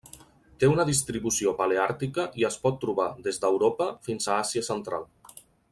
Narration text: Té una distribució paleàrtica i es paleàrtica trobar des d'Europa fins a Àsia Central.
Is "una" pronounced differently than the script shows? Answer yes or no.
no